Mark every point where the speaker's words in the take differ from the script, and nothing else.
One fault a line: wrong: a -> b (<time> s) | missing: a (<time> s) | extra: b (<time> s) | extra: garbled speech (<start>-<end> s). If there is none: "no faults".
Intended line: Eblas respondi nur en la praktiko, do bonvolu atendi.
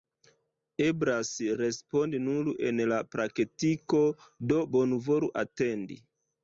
no faults